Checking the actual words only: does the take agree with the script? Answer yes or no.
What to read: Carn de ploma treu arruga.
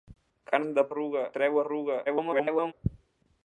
no